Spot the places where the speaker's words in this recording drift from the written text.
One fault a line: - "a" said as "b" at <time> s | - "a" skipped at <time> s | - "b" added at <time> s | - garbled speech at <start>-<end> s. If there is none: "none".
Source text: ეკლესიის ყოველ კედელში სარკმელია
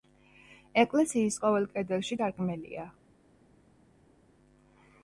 none